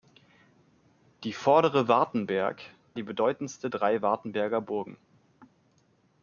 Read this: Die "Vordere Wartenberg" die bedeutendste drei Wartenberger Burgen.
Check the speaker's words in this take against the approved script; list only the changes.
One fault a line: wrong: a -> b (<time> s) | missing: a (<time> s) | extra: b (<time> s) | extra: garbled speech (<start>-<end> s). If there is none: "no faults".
no faults